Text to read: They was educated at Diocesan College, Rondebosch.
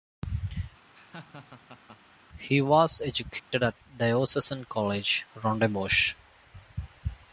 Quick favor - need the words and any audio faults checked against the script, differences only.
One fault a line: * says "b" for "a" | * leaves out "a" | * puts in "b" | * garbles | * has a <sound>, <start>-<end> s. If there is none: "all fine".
* has a laugh, 0.8-2.0 s
* says "He" for "They"
* has a dropout, 3.4-3.5 s